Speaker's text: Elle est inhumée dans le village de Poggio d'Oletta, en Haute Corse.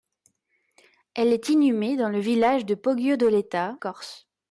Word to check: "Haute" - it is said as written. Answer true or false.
false